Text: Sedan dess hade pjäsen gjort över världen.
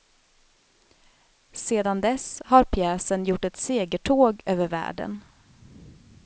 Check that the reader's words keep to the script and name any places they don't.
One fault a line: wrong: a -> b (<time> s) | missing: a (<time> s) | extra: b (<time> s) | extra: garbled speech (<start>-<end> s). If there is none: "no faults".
wrong: hade -> har (2.5 s)
extra: ett segertåg (3.5 s)